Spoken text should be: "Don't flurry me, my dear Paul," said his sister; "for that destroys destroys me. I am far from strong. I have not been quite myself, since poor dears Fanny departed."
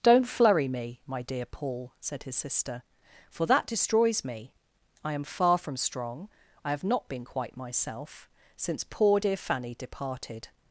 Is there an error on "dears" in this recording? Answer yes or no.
yes